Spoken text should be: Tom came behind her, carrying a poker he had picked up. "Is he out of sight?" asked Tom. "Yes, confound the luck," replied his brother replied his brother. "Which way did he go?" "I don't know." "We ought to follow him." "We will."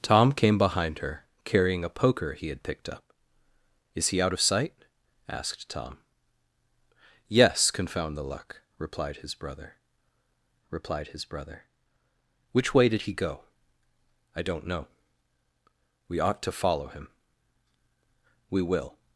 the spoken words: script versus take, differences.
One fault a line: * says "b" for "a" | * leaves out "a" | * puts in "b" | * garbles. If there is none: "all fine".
all fine